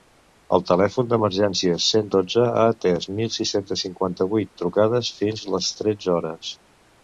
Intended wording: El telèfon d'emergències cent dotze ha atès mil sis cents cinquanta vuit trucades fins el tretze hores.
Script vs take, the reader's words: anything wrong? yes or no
yes